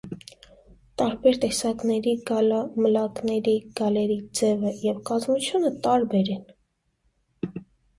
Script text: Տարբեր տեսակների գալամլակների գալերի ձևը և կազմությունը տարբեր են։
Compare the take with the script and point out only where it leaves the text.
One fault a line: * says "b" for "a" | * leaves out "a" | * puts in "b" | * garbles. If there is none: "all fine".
all fine